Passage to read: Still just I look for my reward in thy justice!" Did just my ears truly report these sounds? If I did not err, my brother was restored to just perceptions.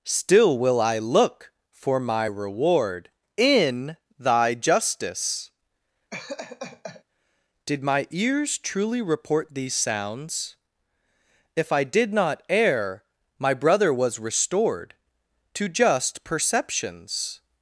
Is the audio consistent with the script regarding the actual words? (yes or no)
no